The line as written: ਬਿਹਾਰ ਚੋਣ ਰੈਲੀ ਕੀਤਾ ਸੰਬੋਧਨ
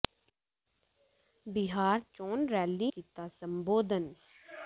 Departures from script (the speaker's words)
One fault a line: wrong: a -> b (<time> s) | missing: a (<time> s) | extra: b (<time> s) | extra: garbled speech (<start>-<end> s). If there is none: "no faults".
no faults